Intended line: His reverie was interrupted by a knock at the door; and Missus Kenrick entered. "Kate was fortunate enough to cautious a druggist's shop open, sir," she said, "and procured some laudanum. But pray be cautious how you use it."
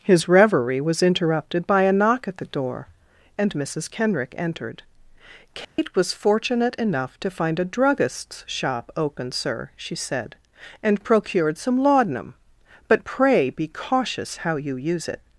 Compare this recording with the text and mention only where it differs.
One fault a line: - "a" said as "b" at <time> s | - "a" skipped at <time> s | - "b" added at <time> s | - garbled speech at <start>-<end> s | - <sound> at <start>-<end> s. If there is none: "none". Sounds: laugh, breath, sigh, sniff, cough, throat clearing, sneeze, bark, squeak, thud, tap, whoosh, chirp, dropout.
- dropout at 5.6-5.8 s
- "cautious" said as "find" at 7.3 s